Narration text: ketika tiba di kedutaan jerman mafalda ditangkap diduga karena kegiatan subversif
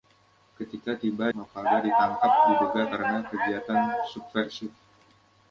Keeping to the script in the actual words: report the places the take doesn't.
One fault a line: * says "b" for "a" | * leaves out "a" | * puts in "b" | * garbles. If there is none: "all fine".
* leaves out "di kedutaan jerman"